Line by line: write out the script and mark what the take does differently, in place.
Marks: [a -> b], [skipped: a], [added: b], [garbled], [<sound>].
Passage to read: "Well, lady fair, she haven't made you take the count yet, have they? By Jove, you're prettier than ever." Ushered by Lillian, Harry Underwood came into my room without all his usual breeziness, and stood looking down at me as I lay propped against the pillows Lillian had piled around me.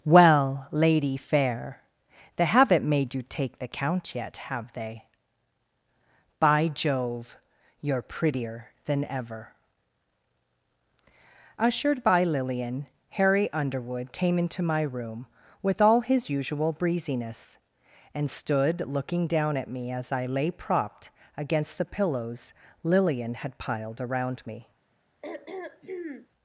"Well, lady fair, [she -> they] haven't made you take the count yet, have they? By Jove, you're prettier than ever." Ushered by Lillian, Harry Underwood came into my room [without -> with] all his usual breeziness, and stood looking down at me as I lay propped against the pillows Lillian had piled around me. [throat clearing]